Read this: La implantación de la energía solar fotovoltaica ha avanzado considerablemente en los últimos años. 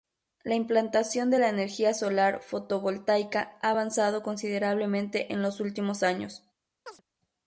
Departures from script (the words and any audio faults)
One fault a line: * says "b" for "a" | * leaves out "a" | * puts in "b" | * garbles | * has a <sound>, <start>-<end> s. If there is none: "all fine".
* has a chirp, 6.9-7.0 s